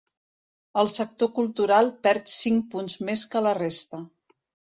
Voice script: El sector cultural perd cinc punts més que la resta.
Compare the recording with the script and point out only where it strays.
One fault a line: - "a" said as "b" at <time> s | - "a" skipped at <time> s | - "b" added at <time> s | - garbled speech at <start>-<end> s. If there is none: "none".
none